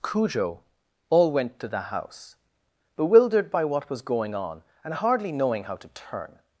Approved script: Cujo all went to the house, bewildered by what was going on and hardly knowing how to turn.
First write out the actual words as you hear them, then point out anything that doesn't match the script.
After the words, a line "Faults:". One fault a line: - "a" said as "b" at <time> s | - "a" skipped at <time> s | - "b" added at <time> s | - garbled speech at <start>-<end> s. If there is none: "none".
Cujo all went to the house, bewildered by what was going on and hardly knowing how to turn.
Faults:
none